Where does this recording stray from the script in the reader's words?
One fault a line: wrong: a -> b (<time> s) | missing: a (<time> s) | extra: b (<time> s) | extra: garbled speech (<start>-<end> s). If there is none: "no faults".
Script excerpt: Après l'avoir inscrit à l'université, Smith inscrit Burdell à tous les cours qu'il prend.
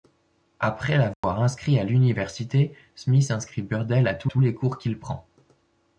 extra: tous (4.2 s)